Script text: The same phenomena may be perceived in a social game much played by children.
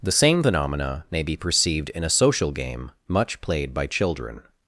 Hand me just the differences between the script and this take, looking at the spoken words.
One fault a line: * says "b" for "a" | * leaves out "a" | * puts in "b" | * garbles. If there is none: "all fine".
all fine